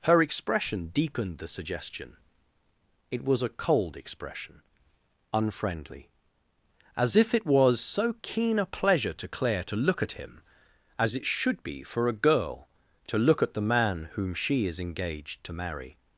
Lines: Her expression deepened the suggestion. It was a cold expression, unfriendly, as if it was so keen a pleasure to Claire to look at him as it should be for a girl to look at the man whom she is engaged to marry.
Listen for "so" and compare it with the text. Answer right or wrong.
right